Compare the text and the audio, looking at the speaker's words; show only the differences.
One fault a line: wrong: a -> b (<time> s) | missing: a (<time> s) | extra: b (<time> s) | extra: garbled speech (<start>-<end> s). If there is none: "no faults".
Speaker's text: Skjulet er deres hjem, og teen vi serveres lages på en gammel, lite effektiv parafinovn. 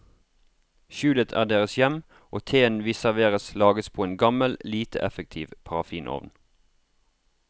no faults